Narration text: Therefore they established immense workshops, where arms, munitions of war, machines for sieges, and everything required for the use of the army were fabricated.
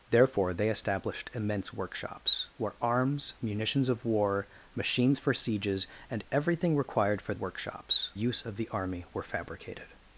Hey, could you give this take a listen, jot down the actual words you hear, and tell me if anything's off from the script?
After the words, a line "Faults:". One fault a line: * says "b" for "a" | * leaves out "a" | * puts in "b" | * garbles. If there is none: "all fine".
Therefore they established immense workshops, where arms, munitions of war, machines for sieges, and everything required for workshops use of the army were fabricated.
Faults:
* says "workshops" for "the"